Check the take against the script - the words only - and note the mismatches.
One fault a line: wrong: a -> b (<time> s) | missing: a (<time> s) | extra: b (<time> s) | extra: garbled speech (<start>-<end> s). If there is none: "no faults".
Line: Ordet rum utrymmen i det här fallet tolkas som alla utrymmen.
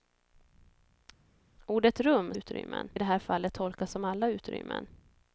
no faults